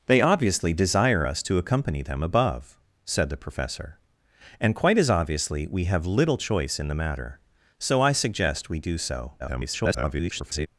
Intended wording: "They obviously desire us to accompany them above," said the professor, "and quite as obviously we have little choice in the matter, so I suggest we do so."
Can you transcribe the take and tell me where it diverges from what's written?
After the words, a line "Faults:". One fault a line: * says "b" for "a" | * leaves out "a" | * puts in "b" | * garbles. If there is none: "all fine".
"They obviously desire us to accompany them above," said the professor, "and quite as obviously we have little choice in the matter, so I suggest we do so." [garbled]
Faults:
* garbles